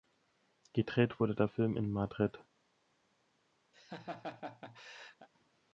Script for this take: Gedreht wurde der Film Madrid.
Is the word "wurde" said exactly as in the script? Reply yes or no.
yes